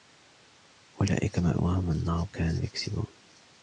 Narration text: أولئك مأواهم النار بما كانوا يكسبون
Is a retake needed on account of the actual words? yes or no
yes